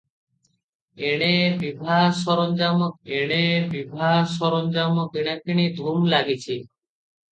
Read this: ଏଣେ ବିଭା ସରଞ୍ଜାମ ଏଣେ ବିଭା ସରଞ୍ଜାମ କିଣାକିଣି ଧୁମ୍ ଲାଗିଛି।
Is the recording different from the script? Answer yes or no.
no